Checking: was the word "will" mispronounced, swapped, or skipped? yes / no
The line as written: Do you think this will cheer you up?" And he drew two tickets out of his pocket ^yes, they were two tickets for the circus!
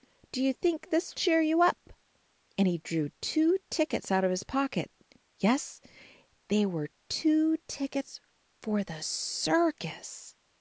yes